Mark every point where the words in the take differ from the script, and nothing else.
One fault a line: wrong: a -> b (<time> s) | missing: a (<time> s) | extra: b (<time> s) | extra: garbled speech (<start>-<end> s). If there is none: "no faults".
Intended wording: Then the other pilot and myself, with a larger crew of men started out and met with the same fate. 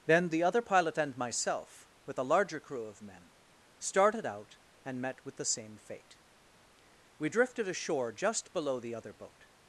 extra: We drifted ashore just below the other boat (7.2 s)